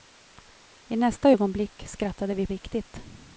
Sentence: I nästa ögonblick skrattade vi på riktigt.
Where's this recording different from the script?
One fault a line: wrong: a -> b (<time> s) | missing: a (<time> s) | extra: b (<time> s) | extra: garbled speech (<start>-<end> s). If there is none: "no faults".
missing: på (2.5 s)